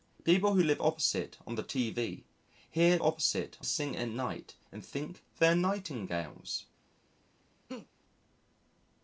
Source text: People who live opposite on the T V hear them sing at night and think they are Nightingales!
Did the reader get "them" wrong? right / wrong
wrong